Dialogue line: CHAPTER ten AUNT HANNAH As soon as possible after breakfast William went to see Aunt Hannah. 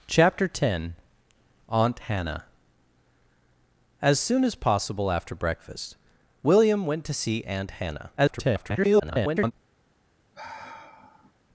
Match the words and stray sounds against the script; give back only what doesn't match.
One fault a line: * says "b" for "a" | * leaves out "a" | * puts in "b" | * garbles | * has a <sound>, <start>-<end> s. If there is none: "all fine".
* garbles
* has a sigh, 10.3-11.3 s